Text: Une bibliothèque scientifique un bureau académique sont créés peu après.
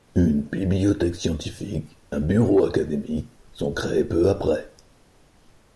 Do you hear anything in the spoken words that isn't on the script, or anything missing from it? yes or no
no